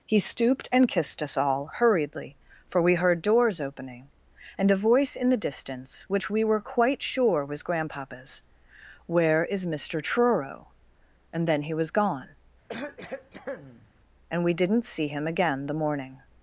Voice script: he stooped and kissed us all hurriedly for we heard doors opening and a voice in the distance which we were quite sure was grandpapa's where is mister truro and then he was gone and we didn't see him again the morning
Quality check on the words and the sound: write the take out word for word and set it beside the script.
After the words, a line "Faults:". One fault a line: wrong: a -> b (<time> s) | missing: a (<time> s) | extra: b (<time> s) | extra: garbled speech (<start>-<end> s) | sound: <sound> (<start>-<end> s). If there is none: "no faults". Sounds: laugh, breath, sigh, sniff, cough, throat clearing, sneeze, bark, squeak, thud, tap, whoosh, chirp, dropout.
he stooped and kissed us all hurriedly for we heard doors opening and a voice in the distance which we were quite sure was grandpapa's where is mister truro and then he was gone and we didn't see him again the morning
Faults:
sound: cough (12.7-13.9 s)